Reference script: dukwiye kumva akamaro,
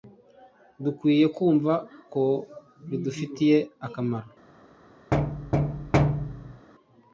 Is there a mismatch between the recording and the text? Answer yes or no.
yes